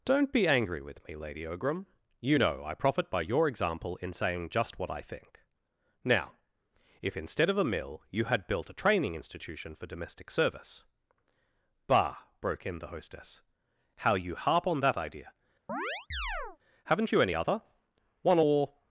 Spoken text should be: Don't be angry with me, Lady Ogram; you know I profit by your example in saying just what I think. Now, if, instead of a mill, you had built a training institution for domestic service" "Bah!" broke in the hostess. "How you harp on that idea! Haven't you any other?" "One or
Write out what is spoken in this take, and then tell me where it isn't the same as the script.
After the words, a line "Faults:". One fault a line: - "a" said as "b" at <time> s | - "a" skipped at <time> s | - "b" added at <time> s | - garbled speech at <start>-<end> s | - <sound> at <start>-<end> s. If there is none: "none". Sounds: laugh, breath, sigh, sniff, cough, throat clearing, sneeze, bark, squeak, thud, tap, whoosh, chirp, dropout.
Don't be angry with me, Lady Ogram; you know I profit by your example in saying just what I think. Now, if, instead of a mill, you had built a training institution for domestic service" "Bah!" broke in the hostess. "How you harp on that idea! Haven't you any other?" "One or
Faults:
- chirp at 15.7-16.6 s